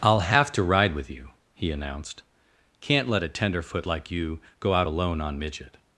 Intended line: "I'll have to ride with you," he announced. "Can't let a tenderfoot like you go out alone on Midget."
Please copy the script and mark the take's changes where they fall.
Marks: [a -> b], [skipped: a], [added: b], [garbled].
"I'll have to ride with you," he announced. "Can't let a tenderfoot like you go out alone on Midget."